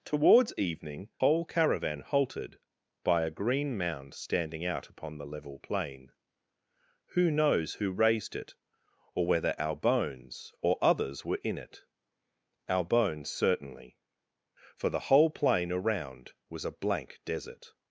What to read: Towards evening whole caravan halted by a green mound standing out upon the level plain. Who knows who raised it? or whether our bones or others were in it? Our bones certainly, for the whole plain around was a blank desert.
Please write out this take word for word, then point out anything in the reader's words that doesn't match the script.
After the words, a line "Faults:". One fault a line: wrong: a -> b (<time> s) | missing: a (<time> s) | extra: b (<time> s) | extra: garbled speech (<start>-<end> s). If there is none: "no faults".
Towards evening whole caravan halted by a green mound standing out upon the level plain. Who knows who raised it? or whether our bones or others were in it? Our bones certainly, for the whole plain around was a blank desert.
Faults:
no faults